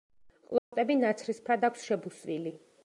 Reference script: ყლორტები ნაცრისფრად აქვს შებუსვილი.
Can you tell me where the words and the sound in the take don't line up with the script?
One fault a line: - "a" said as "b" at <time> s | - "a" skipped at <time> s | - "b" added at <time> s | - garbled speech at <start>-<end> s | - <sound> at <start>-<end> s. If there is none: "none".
- dropout at 0.6-0.7 s